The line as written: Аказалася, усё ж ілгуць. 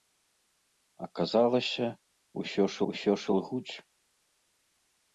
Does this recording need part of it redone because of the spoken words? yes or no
yes